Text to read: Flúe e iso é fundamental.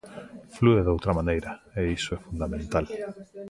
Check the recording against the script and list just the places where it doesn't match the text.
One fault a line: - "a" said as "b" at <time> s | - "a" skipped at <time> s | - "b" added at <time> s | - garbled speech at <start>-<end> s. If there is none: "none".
- "doutra maneira" added at 0.9 s